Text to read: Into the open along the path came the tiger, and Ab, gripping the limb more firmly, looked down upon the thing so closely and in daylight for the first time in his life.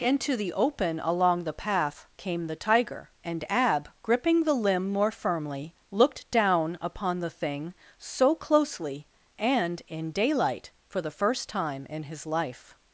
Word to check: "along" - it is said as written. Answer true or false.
true